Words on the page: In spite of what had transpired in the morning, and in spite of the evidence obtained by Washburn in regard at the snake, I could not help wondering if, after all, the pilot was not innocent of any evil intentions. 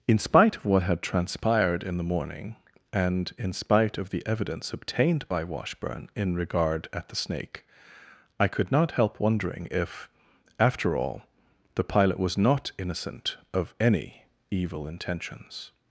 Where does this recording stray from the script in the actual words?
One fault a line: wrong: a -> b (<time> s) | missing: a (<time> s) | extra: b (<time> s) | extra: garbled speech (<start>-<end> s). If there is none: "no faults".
no faults